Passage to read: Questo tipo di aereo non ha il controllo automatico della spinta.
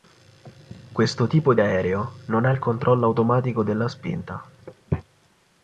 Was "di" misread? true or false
false